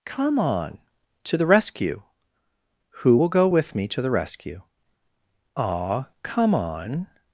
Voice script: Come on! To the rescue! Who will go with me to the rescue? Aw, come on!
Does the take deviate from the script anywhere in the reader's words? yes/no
no